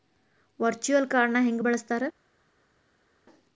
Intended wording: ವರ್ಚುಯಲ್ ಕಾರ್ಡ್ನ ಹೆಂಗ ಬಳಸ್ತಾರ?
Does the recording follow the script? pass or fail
pass